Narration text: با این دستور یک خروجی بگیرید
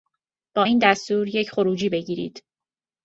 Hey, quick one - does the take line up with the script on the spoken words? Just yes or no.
yes